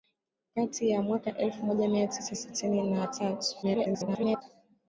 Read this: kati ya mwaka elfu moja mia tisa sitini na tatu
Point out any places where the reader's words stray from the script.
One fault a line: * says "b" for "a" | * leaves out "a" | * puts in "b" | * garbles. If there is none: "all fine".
* garbles